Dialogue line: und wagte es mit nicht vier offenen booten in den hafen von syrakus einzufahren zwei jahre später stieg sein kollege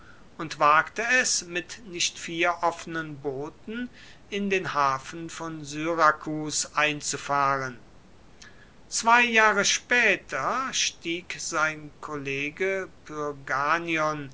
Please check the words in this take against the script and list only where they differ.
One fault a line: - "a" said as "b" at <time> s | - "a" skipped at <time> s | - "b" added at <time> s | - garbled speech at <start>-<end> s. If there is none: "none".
none